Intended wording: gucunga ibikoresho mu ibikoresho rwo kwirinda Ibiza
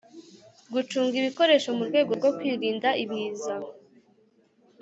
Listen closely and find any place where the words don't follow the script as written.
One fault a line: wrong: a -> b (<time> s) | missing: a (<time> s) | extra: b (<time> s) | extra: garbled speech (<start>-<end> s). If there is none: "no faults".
wrong: ibikoresho -> rwego (1.9 s)